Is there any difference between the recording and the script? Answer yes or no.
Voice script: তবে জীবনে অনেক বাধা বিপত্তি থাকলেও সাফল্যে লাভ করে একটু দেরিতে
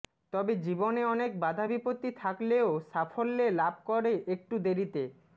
no